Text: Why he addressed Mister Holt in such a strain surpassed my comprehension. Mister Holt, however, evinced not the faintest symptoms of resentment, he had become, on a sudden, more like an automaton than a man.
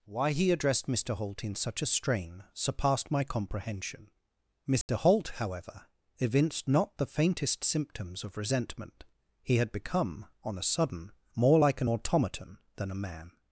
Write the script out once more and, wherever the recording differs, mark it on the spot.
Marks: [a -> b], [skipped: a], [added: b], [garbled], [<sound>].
Why he addressed Mister Holt in such a strain surpassed my comprehension. Mister [dropout] Holt, however, evinced not the faintest symptoms of resentment, he had become, on a sudden, more like an automaton than a man.